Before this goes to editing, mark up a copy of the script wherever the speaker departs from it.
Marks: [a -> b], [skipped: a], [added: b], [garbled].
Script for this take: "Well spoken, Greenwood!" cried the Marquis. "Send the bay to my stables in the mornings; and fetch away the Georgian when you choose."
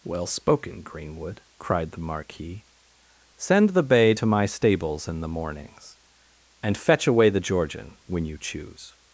"Well spoken, Greenwood!" cried the Marquis. "Send the bay to my stables in the mornings; and fetch away the Georgian when you choose."